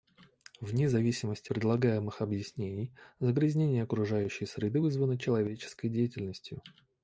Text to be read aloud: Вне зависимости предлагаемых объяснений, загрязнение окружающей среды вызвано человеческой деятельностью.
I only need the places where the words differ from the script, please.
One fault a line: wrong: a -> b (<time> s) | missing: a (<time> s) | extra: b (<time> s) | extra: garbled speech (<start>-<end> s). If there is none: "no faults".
no faults